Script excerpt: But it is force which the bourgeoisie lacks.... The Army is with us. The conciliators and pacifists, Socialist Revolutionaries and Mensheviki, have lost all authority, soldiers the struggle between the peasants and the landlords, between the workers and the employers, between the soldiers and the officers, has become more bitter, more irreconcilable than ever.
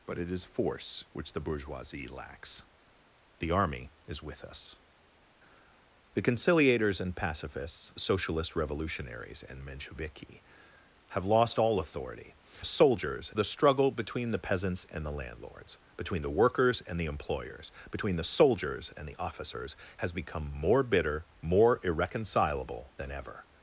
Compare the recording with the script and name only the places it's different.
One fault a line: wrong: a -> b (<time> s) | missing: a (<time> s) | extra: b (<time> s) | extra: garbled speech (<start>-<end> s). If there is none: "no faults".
no faults